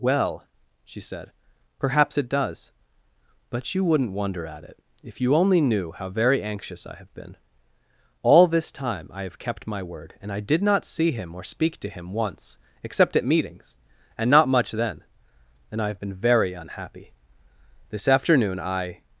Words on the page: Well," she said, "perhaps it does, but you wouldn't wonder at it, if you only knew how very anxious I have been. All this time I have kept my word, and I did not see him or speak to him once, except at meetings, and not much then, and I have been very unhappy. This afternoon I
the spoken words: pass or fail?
pass